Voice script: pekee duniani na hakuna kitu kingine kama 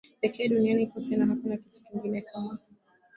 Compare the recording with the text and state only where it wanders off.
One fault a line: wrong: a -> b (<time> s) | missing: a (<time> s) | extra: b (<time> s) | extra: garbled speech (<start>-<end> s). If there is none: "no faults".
extra: kote (0.9 s)